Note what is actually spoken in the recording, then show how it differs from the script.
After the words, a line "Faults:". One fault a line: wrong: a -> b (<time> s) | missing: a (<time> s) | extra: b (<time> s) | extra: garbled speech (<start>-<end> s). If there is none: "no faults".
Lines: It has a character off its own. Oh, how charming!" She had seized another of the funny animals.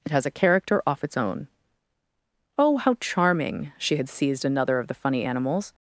It has a character off its own. Oh, how charming!" She had seized another of the funny animals.
Faults:
no faults